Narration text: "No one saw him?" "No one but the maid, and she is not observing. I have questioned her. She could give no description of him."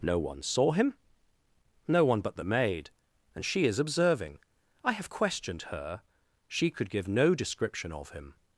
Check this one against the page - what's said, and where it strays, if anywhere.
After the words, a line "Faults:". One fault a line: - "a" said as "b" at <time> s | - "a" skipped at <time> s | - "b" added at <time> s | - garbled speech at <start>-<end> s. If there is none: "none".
"No one saw him?" "No one but the maid, and she is observing. I have questioned her. She could give no description of him."
Faults:
- "not" skipped at 3.8 s